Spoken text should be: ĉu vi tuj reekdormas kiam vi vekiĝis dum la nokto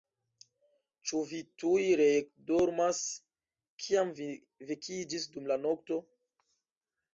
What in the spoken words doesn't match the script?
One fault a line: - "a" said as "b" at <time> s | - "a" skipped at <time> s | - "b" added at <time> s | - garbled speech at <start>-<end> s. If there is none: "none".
none